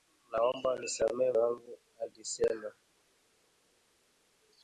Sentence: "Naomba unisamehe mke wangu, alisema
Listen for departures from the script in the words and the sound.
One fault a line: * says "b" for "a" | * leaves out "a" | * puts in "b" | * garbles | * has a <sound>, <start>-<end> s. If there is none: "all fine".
* leaves out "mke"